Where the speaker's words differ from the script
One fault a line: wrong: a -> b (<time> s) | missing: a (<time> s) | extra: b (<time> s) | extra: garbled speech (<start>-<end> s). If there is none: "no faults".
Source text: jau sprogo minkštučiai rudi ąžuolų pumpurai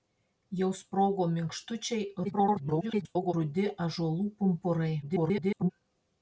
extra: garbled speech (2.2-3.3 s)
extra: garbled speech (5.0-5.7 s)